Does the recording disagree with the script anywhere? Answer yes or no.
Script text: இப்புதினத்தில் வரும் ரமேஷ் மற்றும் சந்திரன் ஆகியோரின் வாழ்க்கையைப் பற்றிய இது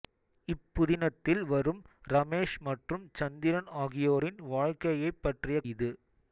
no